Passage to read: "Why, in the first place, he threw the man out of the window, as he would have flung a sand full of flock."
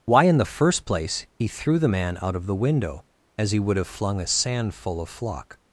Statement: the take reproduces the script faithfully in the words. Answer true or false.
true